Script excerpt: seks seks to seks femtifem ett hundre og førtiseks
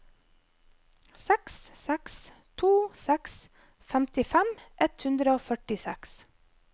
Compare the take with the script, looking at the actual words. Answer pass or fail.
pass